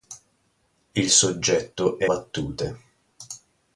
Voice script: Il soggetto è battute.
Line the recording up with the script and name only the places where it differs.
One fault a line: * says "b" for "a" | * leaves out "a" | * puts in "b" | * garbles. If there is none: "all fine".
all fine